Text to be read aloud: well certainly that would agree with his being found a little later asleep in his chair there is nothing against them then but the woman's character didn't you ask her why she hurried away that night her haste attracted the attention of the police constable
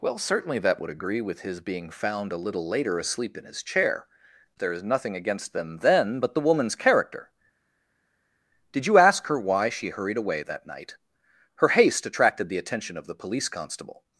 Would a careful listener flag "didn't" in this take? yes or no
yes